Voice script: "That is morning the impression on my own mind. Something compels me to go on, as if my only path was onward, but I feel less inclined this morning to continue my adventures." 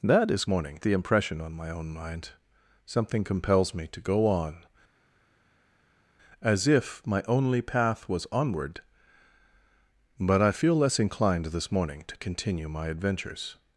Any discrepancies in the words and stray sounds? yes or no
no